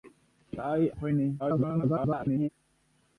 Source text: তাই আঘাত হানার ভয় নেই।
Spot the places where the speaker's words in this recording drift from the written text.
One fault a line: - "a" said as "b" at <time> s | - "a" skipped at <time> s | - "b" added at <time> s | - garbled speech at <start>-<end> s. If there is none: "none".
- "আঘাত হানার" skipped at 0.8 s
- garbled speech at 1.4-2.5 s